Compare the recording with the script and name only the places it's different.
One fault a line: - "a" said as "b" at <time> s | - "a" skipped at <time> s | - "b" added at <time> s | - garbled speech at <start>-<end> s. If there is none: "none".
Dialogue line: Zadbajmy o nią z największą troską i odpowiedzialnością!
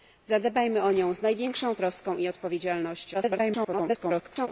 - garbled speech at 3.1-4.5 s